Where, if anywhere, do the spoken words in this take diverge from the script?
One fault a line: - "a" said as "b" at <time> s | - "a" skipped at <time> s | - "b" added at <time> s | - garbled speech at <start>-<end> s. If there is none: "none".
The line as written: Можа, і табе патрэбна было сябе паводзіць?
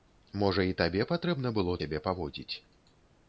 none